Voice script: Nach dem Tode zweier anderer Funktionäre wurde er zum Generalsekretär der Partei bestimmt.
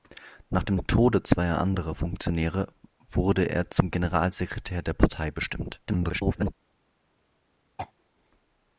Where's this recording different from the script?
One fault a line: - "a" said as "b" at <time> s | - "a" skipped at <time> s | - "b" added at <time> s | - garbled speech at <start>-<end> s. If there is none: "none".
- garbled speech at 5.9-6.5 s